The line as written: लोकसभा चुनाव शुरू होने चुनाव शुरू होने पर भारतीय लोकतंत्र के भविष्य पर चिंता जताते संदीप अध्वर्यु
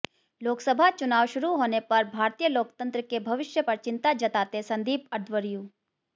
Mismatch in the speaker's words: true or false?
true